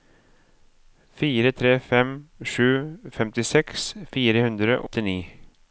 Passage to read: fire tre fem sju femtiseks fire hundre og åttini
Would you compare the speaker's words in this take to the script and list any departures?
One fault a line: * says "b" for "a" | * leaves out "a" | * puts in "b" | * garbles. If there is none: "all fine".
* leaves out "og"